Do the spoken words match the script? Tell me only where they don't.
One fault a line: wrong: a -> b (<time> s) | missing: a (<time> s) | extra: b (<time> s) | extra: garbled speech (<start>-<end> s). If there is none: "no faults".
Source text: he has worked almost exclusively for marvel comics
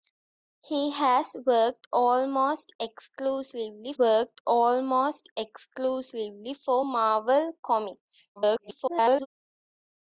extra: worked almost exclusively (4.0 s)
extra: garbled speech (8.4-9.3 s)